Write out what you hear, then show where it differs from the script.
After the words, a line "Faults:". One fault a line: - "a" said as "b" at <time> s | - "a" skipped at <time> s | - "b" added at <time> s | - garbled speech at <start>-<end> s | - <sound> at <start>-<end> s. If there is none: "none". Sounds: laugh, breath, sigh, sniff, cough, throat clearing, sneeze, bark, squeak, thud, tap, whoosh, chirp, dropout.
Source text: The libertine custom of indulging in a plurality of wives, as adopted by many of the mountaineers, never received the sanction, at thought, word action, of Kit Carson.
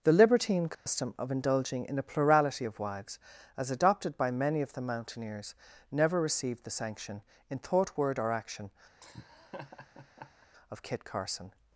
The libertine custom of indulging in a plurality of wives, as adopted by many of the mountaineers, never received the sanction, in thought, word or action, of Kit Carson.
Faults:
- dropout at 0.7-0.9 s
- "at" said as "in" at 7.5 s
- "or" added at 8.2 s
- laugh at 9.0-10.5 s